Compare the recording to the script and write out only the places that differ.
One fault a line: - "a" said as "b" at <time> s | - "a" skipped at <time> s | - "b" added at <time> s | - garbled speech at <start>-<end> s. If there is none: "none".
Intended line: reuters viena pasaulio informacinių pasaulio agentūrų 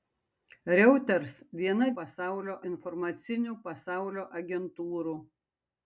none